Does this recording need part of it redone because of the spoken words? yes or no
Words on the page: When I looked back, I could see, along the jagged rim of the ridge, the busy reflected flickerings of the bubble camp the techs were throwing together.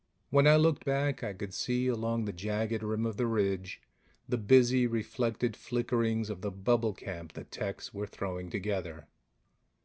no